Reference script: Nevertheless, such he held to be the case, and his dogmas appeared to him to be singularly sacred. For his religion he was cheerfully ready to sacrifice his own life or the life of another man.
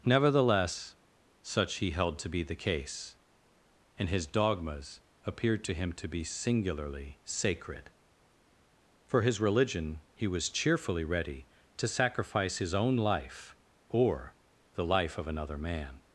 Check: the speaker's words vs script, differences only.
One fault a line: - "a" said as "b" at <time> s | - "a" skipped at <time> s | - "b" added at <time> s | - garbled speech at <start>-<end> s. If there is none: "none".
none